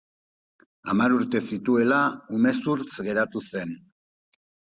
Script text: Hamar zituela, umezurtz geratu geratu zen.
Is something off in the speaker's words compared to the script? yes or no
yes